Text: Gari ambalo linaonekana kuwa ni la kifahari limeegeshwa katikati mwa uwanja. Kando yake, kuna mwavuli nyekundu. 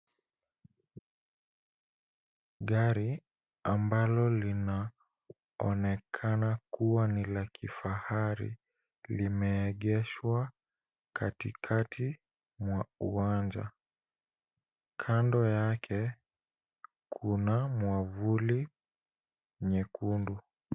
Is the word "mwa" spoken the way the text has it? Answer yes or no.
yes